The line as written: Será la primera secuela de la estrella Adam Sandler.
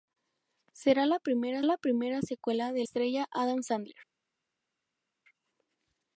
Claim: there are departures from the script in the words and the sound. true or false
true